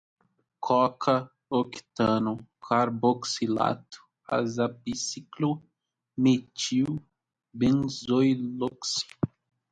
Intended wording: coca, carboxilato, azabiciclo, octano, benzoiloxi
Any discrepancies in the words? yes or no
yes